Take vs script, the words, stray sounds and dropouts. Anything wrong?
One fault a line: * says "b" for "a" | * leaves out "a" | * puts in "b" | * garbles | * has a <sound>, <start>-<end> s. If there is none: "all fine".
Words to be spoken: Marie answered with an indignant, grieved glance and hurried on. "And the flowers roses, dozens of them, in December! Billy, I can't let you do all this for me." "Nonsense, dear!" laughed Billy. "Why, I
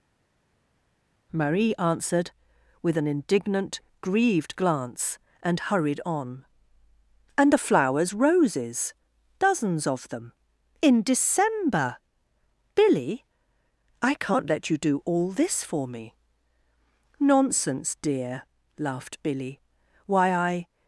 all fine